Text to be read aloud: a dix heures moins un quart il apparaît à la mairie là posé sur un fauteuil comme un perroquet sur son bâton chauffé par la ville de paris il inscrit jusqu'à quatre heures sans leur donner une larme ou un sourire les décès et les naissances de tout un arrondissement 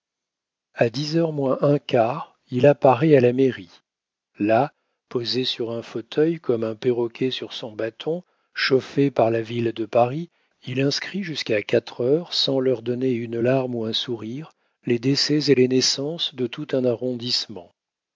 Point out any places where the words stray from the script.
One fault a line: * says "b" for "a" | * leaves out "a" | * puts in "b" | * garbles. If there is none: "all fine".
all fine